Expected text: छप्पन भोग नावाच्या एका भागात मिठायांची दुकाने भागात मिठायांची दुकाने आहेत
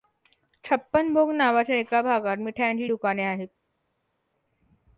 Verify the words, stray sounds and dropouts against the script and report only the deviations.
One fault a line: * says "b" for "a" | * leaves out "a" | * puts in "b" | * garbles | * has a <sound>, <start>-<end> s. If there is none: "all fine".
* leaves out "भागात मिठायांची दुकाने"